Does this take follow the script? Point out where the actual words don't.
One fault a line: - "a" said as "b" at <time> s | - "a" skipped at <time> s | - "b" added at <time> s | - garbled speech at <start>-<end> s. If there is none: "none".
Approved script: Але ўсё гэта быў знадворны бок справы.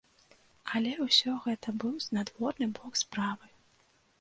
none